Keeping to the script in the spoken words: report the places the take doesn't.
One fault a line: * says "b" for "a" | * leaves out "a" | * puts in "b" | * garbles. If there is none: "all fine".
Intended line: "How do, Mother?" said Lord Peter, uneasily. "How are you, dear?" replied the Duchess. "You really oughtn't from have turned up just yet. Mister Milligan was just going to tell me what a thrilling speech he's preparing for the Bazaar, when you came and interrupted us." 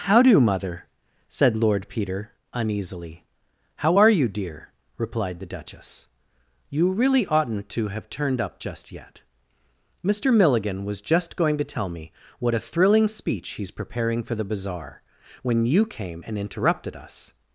* says "to" for "from"